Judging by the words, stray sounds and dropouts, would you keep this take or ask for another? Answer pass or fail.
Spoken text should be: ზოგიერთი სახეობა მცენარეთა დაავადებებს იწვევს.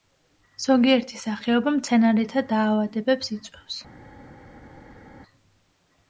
pass